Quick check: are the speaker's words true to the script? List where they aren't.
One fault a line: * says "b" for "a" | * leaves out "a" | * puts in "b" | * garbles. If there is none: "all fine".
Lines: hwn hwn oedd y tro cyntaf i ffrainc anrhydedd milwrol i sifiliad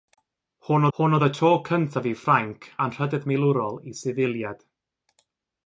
all fine